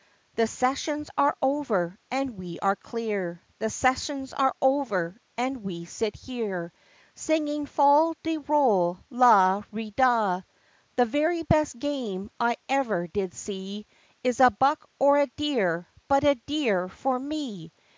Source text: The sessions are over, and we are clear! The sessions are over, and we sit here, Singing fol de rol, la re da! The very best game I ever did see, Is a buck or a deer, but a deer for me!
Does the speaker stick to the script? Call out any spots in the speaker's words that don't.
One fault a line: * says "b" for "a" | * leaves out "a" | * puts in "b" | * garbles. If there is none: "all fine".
all fine